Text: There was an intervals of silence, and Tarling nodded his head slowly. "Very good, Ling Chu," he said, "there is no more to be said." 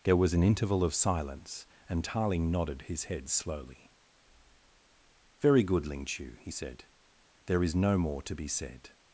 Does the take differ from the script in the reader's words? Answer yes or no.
yes